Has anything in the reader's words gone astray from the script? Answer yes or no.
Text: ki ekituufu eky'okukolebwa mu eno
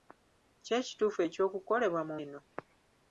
no